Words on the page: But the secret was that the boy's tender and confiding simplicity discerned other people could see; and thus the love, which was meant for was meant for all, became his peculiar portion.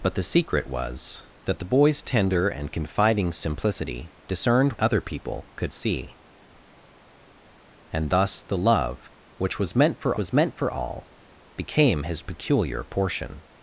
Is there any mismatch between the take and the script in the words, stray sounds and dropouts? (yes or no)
no